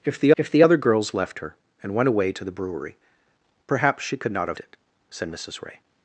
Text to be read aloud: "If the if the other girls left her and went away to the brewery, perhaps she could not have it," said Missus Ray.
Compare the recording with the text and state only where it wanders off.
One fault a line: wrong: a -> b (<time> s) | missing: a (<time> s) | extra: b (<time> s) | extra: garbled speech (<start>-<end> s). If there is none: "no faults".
no faults